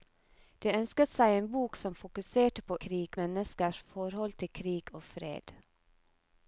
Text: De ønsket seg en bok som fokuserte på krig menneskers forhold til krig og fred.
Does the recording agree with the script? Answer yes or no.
yes